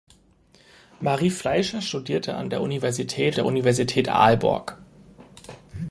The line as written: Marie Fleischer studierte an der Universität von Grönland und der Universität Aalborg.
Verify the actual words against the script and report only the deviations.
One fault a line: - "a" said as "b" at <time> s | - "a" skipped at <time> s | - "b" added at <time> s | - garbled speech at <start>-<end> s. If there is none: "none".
- "von Grönland und" skipped at 3.4 s